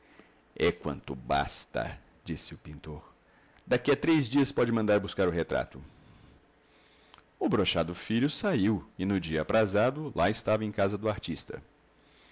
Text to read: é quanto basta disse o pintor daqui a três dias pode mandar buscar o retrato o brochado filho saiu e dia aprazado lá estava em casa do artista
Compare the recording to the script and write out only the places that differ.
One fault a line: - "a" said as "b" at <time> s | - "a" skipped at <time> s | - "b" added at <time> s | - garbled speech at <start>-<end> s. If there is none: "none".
- "no" added at 9.1 s